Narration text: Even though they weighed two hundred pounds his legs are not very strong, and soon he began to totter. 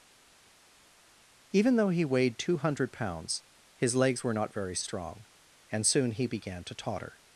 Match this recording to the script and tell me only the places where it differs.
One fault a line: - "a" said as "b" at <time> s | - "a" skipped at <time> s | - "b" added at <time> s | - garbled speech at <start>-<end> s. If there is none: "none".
- "they" said as "he" at 1.9 s
- "are" said as "were" at 4.2 s